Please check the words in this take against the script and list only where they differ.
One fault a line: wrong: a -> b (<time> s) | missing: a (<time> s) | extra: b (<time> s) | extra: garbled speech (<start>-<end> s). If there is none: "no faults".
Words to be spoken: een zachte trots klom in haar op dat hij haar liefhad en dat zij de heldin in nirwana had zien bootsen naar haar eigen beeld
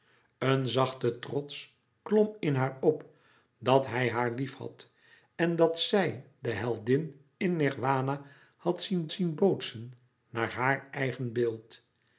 extra: zien (9.1 s)